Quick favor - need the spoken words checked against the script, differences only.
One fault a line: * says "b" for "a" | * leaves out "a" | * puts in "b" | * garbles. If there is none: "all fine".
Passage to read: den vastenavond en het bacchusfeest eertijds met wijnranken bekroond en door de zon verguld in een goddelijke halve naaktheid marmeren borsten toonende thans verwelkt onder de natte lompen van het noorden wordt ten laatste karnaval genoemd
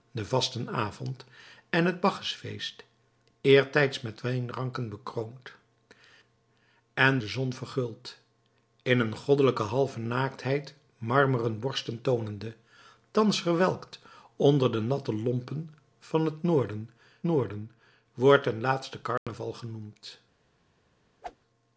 * leaves out "door"
* puts in "noorden"